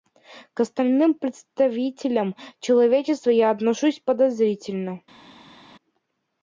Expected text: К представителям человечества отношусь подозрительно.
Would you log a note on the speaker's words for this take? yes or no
yes